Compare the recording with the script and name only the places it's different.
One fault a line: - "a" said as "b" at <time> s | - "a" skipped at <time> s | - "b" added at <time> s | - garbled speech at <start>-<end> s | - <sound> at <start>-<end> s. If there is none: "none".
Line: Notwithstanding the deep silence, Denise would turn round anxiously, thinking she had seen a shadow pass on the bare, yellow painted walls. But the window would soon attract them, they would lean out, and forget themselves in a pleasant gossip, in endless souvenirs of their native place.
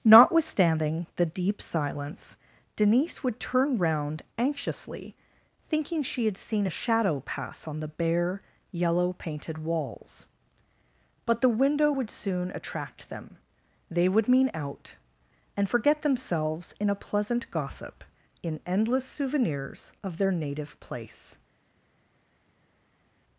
- "lean" said as "mean" at 14.3 s